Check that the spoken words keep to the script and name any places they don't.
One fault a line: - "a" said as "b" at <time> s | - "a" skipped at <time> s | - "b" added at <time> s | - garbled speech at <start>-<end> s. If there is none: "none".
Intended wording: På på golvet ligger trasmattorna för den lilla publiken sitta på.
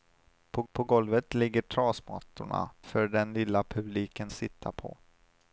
none